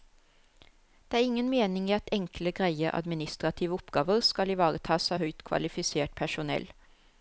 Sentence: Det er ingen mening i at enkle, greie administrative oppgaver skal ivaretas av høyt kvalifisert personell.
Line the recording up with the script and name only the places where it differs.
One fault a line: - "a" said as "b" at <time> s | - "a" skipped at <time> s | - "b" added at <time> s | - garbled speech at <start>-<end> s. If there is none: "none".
none